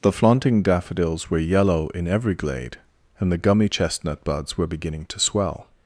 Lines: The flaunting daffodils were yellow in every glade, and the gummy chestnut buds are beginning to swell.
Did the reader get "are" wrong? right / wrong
wrong